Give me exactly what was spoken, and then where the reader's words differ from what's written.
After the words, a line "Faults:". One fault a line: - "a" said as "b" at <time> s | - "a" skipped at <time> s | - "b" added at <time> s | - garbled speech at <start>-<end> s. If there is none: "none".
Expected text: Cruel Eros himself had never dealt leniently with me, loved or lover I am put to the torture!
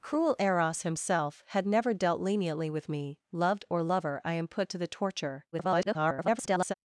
Cruel Eros himself had never dealt leniently with me, loved or lover I am put to the torture! [garbled]
Faults:
- garbled speech at 5.5-6.7 s